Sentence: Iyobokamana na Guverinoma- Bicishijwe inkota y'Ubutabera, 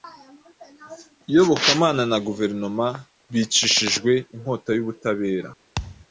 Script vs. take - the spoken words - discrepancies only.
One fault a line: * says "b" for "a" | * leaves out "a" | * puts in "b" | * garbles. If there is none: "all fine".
all fine